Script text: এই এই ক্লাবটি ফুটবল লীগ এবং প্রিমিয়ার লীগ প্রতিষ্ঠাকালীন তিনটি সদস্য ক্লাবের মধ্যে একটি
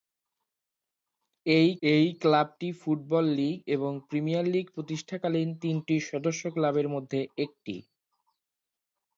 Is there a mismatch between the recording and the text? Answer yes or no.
no